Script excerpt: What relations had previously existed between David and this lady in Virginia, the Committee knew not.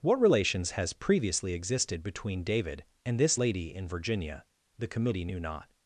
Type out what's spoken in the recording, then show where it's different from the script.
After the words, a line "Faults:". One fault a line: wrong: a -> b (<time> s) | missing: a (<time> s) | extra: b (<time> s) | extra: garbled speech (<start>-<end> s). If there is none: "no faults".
What relations has previously existed between David and this lady in Virginia, the Committee knew not.
Faults:
wrong: had -> has (0.7 s)